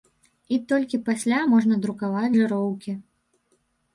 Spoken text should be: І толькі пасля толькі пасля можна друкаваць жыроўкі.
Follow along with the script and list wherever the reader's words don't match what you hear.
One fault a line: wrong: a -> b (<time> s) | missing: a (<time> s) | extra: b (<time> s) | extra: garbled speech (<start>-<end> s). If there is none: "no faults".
missing: толькі пасля (1.4 s)